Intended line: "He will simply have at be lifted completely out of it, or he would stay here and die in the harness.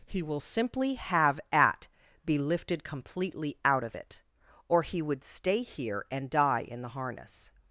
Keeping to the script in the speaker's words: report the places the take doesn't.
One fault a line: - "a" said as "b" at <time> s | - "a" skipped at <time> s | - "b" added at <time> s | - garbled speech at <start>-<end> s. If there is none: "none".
none